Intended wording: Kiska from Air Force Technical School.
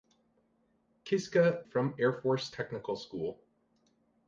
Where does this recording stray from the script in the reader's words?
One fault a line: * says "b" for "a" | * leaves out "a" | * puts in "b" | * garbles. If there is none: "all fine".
all fine